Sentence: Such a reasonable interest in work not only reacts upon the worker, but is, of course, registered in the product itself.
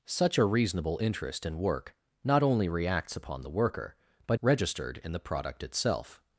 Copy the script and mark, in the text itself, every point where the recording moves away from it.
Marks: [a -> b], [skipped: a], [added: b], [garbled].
Such a reasonable interest in work not only reacts upon the worker, but [skipped: is, of course,] registered in the product itself.